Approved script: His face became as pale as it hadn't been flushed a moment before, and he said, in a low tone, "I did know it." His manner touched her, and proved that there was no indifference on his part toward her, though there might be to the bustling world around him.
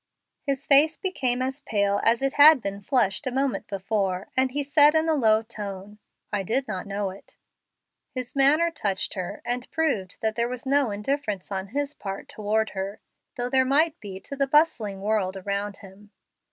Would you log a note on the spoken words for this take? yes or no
yes